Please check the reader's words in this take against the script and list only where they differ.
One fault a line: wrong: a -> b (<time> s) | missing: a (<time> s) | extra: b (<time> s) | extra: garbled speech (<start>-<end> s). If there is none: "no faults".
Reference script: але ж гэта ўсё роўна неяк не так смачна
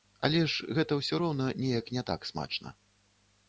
no faults